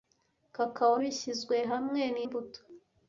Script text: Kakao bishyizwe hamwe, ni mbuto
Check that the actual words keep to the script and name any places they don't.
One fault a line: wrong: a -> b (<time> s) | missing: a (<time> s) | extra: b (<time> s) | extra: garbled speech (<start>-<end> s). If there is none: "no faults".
no faults